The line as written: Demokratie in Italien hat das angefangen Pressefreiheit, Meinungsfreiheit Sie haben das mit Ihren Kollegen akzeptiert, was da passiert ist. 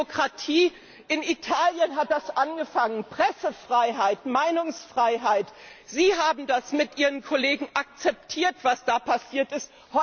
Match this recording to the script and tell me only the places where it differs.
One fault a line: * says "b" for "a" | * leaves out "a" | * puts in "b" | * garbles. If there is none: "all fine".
all fine